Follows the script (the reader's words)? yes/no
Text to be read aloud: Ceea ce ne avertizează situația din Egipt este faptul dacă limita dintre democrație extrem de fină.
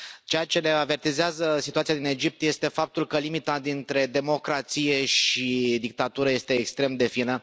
no